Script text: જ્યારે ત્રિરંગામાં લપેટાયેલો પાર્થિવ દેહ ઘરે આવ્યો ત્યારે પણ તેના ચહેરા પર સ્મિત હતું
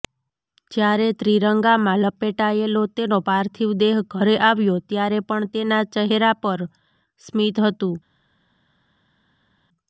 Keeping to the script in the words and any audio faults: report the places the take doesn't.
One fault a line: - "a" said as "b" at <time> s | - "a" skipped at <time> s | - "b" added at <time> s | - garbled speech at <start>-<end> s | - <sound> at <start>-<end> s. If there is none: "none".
- "તેનો" added at 2.9 s